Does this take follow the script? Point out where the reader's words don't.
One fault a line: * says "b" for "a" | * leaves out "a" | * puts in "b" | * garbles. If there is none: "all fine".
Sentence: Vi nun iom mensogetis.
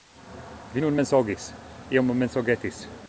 * puts in "mensogis"